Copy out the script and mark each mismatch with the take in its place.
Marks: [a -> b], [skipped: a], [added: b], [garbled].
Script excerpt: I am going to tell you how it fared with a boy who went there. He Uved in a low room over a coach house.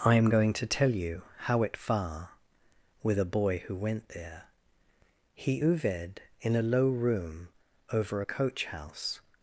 I am going to tell you how it [fared -> far] with a boy who went there. He Uved in a low room over a coach house.